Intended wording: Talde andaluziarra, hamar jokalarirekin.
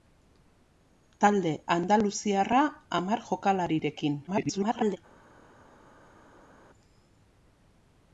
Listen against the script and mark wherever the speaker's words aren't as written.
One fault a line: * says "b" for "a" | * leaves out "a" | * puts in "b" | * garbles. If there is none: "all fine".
* garbles